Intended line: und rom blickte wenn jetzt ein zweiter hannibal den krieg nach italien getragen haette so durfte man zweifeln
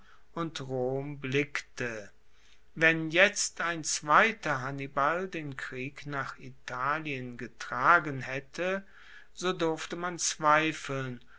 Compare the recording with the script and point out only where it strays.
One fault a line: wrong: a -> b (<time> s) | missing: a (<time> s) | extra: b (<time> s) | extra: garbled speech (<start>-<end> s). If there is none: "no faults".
no faults